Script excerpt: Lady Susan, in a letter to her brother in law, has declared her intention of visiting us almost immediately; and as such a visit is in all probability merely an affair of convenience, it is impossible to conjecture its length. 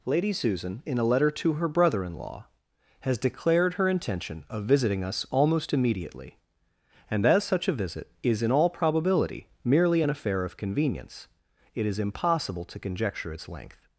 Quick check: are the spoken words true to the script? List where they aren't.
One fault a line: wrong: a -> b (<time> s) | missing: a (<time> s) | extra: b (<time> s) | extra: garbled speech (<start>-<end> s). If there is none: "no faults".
no faults